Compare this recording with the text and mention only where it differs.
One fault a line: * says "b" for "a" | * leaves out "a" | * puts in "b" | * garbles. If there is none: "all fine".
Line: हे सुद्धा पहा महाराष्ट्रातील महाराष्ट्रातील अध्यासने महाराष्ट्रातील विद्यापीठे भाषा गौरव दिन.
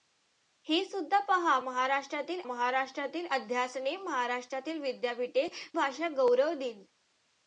all fine